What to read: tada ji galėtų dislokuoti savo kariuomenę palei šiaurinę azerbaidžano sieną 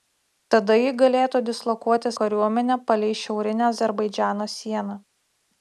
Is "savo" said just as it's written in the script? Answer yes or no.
no